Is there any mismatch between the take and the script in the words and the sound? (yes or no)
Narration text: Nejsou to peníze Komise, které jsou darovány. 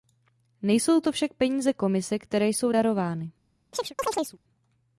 yes